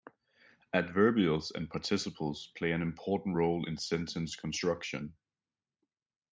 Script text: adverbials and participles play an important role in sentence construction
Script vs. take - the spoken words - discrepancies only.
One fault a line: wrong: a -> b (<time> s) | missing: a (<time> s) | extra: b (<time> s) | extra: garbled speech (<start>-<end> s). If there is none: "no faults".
no faults